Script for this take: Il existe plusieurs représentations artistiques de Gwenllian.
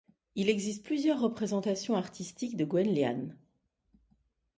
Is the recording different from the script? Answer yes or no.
no